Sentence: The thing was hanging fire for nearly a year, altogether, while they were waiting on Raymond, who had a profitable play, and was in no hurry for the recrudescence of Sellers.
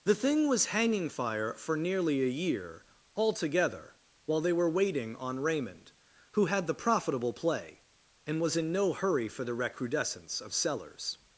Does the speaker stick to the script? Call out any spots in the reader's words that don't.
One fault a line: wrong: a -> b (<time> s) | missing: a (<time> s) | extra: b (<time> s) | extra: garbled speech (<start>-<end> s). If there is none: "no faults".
wrong: a -> the (6.7 s)